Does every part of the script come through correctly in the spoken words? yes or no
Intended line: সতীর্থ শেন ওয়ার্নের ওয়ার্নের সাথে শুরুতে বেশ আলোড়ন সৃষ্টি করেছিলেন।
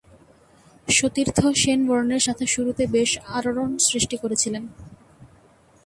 no